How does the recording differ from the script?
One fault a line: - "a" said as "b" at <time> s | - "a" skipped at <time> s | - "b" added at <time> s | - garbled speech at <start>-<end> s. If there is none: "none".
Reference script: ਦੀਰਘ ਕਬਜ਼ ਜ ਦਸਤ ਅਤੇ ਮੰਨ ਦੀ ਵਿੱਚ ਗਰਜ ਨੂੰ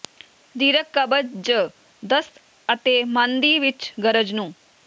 none